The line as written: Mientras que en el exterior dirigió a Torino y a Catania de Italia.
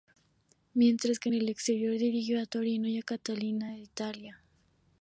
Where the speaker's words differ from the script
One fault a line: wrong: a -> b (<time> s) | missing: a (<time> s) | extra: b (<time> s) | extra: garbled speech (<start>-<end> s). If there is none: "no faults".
no faults